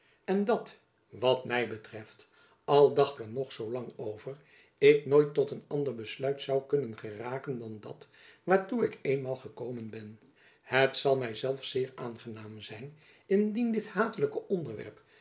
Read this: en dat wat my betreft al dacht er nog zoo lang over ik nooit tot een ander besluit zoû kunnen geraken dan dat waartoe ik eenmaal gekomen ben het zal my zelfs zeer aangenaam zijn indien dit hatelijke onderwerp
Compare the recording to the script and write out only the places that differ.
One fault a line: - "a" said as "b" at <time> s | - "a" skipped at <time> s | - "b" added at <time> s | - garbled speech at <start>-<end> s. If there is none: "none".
none